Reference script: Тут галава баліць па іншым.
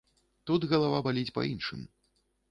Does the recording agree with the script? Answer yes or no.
yes